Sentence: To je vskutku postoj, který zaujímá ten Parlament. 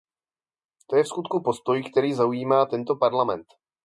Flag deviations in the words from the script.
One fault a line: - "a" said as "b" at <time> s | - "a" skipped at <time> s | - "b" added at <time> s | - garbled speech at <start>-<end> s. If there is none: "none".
- "ten" said as "tento" at 2.6 s